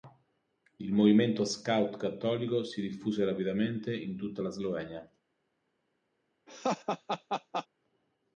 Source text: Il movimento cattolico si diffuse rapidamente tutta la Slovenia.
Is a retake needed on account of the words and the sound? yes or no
yes